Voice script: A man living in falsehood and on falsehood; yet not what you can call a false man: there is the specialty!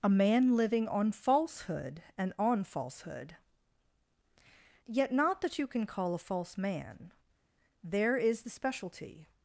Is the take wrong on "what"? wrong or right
wrong